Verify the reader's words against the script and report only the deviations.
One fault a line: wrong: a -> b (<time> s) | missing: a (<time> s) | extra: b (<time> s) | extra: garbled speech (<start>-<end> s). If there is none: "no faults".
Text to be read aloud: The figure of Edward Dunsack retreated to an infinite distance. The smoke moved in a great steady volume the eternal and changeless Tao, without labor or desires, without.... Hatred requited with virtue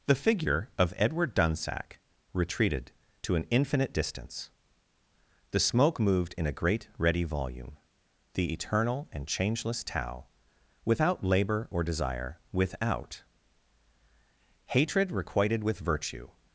wrong: steady -> ready (7.0 s)
wrong: desires -> desire (11.8 s)